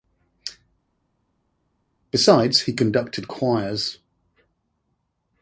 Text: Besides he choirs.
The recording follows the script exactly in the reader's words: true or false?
false